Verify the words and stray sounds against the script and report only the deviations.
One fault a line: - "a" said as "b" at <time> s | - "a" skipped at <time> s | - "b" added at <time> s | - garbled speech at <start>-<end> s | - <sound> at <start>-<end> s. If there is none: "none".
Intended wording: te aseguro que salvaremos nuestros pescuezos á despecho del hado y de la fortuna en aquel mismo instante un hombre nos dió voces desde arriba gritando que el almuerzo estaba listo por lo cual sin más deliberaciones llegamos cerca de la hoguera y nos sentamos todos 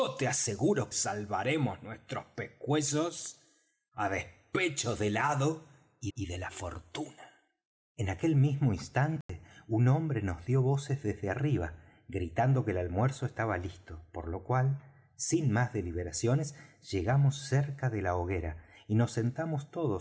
- "que" skipped at 0.9 s
- "y" added at 6.1 s
- dropout at 9.2-9.3 s